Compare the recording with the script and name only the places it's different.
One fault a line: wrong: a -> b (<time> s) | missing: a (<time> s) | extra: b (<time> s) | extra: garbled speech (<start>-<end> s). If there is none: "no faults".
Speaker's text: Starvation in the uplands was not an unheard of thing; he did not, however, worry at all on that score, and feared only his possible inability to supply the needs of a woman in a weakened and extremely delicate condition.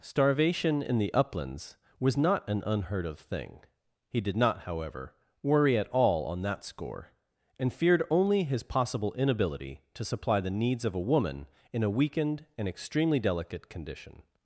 no faults